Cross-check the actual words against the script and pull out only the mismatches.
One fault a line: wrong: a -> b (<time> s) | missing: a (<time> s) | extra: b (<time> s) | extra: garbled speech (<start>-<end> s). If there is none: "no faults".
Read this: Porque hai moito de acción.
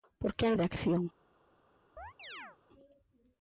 missing: moito (0.6 s)